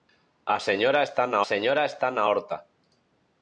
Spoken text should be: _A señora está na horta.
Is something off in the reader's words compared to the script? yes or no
yes